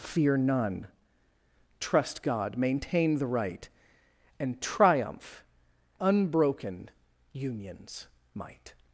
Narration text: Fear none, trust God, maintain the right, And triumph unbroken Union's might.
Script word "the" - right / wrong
right